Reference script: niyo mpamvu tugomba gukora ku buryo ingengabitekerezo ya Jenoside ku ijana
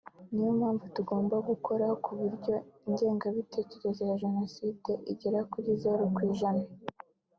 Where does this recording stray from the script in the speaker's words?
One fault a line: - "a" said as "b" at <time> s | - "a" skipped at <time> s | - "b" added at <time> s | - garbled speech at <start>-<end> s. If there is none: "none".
- "igera kuri zeru" added at 5.1 s